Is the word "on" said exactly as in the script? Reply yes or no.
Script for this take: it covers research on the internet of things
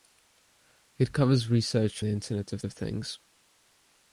no